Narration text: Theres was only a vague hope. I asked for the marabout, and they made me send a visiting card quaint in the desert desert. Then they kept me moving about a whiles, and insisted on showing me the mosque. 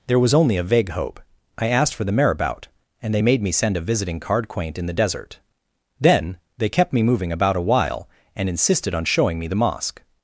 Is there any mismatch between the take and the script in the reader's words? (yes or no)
yes